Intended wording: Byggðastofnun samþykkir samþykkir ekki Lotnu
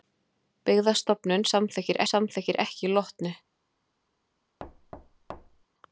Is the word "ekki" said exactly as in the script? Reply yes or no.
yes